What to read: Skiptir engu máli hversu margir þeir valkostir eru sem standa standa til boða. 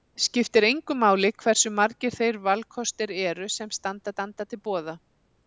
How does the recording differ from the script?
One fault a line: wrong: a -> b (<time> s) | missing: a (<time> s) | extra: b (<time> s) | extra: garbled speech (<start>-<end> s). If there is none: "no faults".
no faults